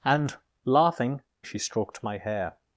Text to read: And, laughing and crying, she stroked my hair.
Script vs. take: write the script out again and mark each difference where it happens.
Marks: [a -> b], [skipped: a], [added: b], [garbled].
And, laughing [skipped: and crying,] she stroked my hair.